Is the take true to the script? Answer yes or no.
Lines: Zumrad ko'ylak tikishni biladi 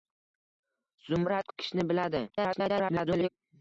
no